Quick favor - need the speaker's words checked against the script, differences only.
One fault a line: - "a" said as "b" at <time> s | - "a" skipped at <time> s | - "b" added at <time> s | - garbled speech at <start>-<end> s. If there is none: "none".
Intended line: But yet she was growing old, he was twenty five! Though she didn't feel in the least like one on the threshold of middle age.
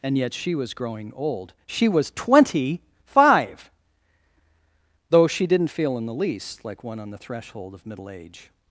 - "But" said as "And" at 0.0 s
- "he" said as "she" at 1.7 s